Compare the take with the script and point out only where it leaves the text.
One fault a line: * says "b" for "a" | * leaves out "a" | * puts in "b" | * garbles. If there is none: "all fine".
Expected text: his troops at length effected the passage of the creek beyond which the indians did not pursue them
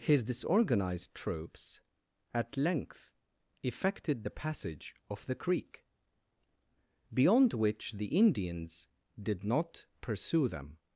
* puts in "disorganized"